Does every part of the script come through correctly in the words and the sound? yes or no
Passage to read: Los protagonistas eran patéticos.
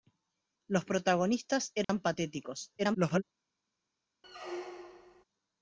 no